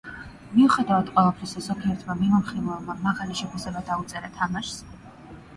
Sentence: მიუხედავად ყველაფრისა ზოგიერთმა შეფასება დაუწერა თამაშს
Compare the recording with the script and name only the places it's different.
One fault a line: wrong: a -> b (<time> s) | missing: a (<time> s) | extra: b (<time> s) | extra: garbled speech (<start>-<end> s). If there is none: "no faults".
extra: მიმოხილველმა მაღალი (2.2 s)